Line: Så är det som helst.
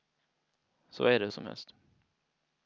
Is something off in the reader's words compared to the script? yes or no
no